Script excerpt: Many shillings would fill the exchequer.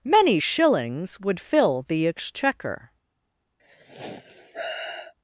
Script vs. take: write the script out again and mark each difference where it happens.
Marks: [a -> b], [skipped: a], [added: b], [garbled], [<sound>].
Many shillings would fill the exchequer. [sigh]